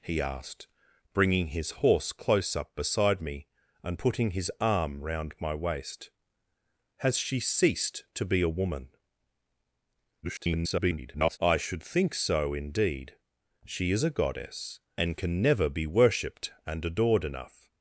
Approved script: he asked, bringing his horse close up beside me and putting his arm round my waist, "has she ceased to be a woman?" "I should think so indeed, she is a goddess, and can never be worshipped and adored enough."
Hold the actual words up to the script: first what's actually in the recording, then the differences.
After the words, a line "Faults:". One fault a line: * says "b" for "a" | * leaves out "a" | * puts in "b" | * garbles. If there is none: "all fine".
he asked, bringing his horse close up beside me and putting his arm round my waist, "has she ceased to be a woman?" [garbled] "I should think so indeed, she is a goddess, and can never be worshipped and adored enough."
Faults:
* garbles